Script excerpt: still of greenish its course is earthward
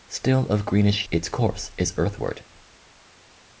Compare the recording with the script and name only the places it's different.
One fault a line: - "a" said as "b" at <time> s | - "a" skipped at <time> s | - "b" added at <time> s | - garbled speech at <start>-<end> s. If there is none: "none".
none